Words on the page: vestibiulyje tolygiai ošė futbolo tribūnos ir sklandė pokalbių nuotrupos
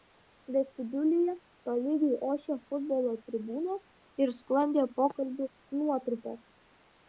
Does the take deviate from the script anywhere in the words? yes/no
no